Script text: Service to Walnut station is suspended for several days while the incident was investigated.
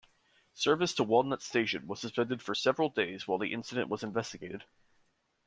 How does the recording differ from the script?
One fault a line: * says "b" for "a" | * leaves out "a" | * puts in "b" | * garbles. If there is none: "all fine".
* says "was" for "is"